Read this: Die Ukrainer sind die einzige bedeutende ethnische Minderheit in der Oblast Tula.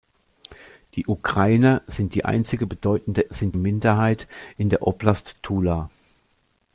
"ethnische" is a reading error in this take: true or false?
true